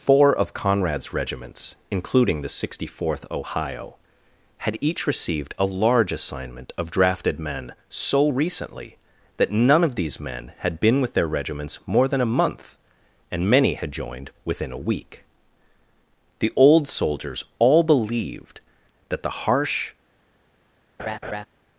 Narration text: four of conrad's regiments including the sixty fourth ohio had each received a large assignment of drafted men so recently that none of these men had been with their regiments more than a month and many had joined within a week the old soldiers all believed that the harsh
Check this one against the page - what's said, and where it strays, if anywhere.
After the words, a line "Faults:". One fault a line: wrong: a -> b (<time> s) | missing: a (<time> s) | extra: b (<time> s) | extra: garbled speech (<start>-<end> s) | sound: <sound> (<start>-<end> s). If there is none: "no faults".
four of conrad's regiments including the sixty fourth ohio had each received a large assignment of drafted men so recently that none of these men had been with their regiments more than a month and many had joined within a week the old soldiers all believed that the harsh
Faults:
sound: laugh (21.0-21.5 s)